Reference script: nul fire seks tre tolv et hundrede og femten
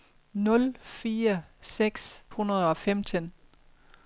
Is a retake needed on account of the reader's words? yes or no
yes